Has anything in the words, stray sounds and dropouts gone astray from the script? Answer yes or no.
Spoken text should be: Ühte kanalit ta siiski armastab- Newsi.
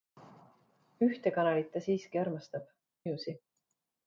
no